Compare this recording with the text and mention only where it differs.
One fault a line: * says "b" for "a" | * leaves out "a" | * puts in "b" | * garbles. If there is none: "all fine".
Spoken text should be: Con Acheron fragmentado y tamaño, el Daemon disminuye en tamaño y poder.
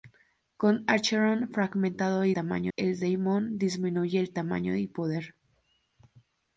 all fine